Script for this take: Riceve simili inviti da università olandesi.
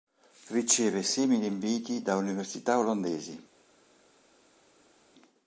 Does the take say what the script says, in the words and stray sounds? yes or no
yes